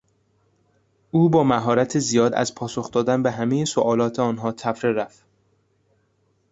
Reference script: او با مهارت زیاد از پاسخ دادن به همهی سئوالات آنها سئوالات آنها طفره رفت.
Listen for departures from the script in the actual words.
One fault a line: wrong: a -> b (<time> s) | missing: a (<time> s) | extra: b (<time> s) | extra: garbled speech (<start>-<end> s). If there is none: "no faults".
missing: سئوالات آنها (4.5 s)